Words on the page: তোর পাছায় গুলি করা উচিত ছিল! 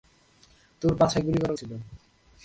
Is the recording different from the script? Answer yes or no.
yes